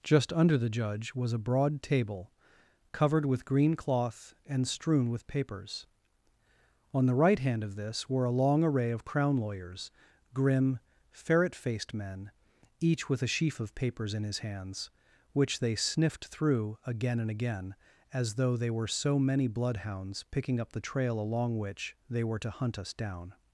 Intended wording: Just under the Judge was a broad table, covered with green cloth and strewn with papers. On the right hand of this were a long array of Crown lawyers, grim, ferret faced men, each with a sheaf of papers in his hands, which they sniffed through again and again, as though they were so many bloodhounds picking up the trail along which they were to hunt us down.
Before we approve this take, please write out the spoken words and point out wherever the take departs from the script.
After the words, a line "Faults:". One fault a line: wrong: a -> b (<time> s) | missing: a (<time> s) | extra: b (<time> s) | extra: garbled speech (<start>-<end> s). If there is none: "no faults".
Just under the Judge was a broad table, covered with green cloth and strewn with papers. On the right hand of this were a long array of Crown lawyers, grim, ferret faced men, each with a sheaf of papers in his hands, which they sniffed through again and again, as though they were so many bloodhounds picking up the trail along which they were to hunt us down.
Faults:
no faults